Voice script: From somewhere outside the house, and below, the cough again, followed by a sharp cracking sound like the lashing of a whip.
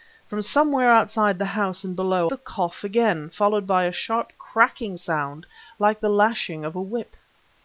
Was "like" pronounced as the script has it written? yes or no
yes